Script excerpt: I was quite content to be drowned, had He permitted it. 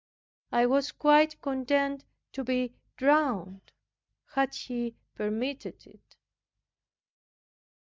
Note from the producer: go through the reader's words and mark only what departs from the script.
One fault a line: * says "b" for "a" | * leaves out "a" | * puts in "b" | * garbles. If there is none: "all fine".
all fine